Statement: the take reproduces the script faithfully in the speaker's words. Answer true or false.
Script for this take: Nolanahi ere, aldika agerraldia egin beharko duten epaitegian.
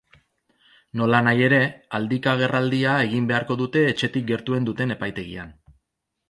false